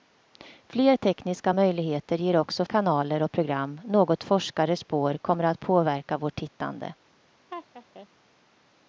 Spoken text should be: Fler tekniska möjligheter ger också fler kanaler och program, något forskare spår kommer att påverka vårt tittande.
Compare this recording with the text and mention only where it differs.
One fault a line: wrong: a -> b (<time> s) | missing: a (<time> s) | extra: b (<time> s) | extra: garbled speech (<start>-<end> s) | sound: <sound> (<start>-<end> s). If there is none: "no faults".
missing: fler (2.6 s)
sound: laugh (7.5-8.1 s)